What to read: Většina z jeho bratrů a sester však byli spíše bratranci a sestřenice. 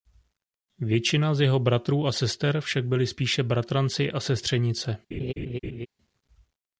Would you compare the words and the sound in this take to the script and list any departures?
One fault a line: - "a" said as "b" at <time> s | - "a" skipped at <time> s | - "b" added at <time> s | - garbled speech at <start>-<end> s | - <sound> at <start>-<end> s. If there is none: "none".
- laugh at 5.1-5.9 s